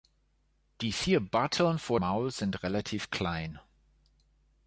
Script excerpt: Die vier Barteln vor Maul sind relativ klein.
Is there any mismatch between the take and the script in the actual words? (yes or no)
no